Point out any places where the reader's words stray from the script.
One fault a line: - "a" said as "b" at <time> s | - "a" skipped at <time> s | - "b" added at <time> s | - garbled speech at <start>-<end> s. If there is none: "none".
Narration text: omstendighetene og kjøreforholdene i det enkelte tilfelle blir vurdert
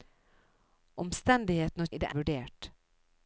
- "kjøreforholdene" skipped at 1.9 s
- "enkelte tilfelle blir" skipped at 2.1 s